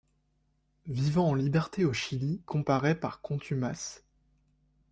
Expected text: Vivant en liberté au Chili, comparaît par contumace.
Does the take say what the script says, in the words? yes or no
yes